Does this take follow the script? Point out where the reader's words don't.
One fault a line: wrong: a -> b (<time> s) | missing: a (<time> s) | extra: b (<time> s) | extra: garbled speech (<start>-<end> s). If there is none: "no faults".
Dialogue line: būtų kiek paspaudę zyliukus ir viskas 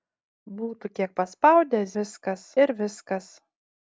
wrong: zyliukus -> viskas (2.0 s)